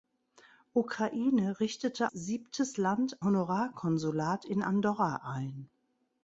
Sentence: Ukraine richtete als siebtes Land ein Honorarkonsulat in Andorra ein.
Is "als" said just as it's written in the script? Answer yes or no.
no